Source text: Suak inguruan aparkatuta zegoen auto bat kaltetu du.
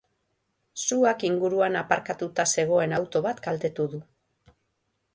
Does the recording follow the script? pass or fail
pass